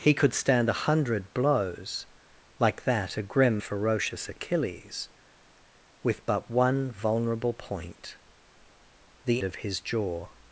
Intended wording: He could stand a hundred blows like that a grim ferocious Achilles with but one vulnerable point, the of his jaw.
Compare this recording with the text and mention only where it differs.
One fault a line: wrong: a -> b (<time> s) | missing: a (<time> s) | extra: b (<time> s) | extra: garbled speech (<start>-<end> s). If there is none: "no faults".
no faults